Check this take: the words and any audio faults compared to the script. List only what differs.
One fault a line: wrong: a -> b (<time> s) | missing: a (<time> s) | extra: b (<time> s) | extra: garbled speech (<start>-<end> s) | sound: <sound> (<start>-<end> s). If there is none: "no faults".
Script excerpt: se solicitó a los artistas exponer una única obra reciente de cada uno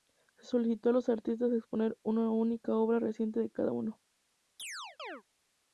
sound: chirp (4.6-5.2 s)